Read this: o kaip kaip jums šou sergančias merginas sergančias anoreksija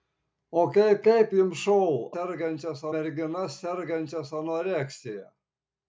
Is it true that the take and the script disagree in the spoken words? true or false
false